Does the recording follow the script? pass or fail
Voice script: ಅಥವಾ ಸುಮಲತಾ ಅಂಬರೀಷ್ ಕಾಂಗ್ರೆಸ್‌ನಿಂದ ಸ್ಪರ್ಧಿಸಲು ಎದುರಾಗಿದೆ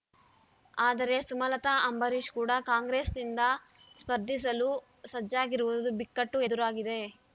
fail